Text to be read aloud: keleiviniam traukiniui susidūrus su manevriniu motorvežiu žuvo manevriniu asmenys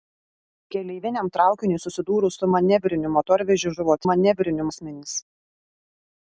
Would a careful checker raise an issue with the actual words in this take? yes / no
no